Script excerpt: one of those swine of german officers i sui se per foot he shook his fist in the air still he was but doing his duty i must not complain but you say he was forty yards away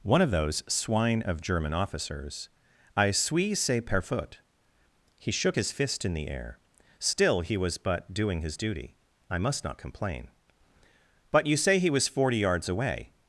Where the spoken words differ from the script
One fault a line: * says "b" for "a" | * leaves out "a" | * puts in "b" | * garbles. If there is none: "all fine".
all fine